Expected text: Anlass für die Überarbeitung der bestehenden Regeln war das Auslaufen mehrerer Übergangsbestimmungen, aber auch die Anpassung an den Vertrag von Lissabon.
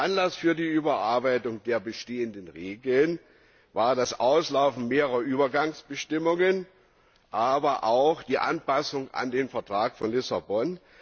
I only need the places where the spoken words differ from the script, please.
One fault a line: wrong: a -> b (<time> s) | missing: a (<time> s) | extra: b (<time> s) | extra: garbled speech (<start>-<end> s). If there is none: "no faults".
no faults